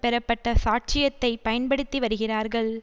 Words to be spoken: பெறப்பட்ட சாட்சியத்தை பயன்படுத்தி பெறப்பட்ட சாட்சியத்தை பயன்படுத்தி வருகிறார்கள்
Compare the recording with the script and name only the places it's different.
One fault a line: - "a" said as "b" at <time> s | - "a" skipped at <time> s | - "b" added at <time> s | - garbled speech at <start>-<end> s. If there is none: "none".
- "பெறப்பட்ட சாட்சியத்தை பயன்படுத்தி" skipped at 2.0 s